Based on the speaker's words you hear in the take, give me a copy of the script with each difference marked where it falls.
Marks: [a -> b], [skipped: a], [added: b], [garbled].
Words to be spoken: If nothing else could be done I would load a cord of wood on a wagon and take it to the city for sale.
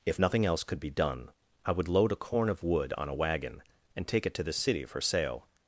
If nothing else could be done I would load a [cord -> corn] of wood on a wagon and take it to the city for sale.